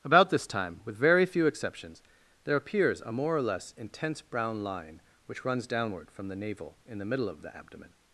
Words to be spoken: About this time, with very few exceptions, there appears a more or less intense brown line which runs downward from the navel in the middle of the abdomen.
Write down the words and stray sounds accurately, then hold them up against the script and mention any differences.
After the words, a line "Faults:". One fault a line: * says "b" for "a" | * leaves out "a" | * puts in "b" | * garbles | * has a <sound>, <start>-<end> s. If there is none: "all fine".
About this time, with very few exceptions, there appears a more or less intense brown line which runs downward from the navel in the middle of the abdomen.
Faults:
all fine